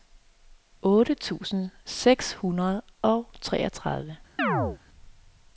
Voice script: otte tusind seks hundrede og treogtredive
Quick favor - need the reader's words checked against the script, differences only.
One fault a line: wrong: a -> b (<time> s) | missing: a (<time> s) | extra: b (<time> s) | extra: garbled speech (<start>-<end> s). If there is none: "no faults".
no faults